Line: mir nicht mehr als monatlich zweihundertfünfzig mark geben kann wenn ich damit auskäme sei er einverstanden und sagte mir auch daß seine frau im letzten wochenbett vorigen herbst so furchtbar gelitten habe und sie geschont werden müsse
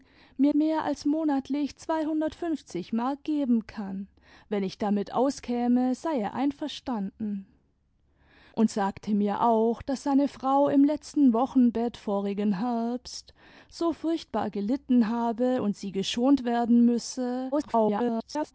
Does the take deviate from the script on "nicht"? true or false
true